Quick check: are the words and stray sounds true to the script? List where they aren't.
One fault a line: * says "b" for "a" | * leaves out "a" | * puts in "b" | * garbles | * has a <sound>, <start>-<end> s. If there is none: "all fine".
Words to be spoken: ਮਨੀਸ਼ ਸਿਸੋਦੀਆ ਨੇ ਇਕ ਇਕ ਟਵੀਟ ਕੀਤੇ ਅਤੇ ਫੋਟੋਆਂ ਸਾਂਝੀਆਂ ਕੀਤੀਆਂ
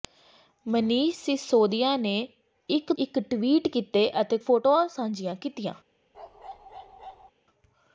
* has a bark, 6.1-7.3 s